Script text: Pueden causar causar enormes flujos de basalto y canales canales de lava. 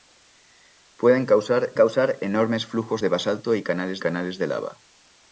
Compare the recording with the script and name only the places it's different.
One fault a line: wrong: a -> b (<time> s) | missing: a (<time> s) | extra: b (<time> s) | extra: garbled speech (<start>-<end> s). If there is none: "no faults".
no faults